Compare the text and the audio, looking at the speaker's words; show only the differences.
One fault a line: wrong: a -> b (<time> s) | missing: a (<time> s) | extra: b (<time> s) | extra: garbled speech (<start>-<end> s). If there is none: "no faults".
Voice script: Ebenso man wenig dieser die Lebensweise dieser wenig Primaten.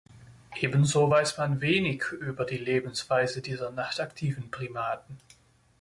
extra: weiß (1.1 s)
wrong: dieser -> über (2.1 s)
wrong: wenig -> nachtaktiven (3.7 s)